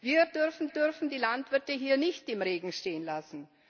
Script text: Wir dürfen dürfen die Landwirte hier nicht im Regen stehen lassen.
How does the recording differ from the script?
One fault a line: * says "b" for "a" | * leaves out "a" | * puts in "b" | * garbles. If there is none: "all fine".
all fine